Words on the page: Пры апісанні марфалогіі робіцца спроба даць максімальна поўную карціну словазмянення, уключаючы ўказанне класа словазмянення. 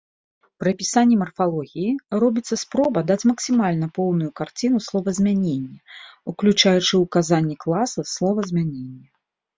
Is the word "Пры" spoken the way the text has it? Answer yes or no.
yes